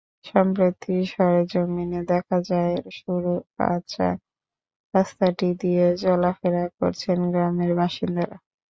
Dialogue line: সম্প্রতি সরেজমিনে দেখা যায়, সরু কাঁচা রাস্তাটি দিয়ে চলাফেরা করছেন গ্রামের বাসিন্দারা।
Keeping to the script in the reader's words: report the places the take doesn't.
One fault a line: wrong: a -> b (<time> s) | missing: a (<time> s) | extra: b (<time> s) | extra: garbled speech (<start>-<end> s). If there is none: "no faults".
no faults